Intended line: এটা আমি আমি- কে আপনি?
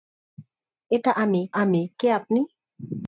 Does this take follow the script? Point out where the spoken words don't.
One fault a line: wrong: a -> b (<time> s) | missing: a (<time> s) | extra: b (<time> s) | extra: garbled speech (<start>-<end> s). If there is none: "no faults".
no faults